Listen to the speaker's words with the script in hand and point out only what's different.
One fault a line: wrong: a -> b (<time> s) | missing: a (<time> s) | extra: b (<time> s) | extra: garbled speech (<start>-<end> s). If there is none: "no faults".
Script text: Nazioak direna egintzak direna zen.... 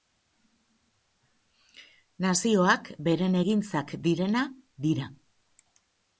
wrong: direna -> beren (3.1 s)
wrong: zen -> dira (4.9 s)